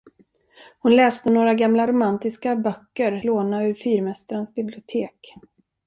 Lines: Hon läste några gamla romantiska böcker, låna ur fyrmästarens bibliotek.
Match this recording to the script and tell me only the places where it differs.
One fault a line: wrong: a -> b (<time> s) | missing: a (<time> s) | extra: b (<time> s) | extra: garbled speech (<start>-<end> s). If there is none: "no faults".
no faults